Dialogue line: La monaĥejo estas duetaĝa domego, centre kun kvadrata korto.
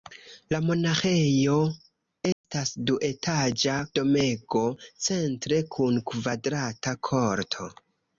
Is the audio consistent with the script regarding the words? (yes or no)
yes